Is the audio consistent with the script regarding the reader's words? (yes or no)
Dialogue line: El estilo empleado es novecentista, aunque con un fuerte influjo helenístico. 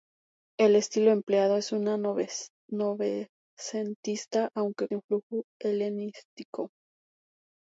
no